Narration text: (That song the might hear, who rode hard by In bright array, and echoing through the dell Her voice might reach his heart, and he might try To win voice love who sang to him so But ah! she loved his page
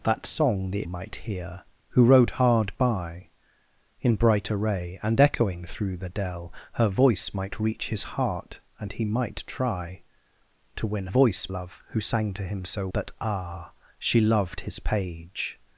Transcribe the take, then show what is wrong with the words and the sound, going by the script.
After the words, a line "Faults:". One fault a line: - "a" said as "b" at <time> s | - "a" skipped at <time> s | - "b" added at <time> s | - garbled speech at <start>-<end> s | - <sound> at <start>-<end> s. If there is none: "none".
(That song the might hear, who rode hard by In bright array, and echoing through the dell Her voice might reach his heart, and he might try To win voice love who sang to him so But ah! she loved his page
Faults:
none